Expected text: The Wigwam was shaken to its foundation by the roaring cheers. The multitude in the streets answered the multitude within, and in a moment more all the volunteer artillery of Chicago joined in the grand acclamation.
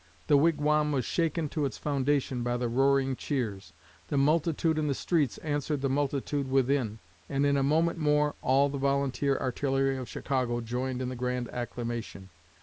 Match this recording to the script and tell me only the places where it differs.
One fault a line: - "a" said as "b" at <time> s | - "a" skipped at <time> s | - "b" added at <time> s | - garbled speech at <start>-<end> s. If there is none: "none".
none